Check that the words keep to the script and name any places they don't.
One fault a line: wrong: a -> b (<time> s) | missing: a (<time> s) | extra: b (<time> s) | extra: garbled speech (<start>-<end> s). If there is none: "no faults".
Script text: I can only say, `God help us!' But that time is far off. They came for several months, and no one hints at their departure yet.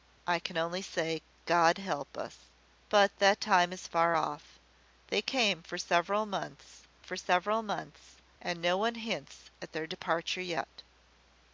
extra: for several months (7.0 s)